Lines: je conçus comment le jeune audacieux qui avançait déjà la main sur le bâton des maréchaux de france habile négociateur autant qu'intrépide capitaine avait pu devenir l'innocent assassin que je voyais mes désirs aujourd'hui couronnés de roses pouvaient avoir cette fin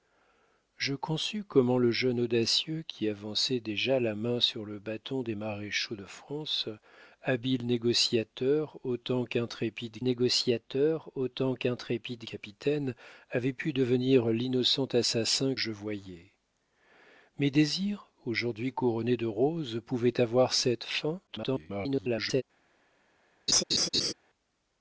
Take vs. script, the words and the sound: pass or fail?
fail